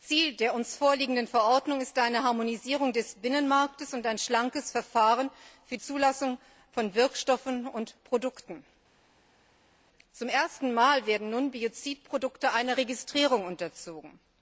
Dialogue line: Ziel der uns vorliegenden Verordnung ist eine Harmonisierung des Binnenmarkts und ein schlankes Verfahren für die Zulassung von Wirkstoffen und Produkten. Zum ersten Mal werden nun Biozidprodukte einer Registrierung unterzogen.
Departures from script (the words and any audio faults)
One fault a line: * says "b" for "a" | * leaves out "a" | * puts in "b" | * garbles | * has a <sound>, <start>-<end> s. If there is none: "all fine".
* leaves out "die"